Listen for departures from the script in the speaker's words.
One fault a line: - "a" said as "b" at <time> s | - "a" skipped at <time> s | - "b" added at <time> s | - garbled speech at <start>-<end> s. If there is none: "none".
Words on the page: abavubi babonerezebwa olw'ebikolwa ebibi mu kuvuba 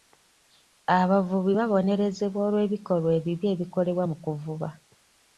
- "ebikolebwa" added at 3.5 s